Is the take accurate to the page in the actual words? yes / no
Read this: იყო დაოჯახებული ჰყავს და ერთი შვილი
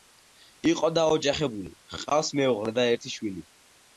no